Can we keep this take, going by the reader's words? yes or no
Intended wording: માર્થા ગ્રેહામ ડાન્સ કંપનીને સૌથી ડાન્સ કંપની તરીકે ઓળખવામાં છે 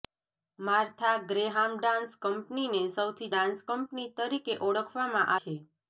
yes